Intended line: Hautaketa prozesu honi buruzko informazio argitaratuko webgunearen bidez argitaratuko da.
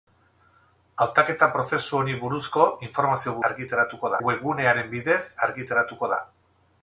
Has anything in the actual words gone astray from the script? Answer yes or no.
no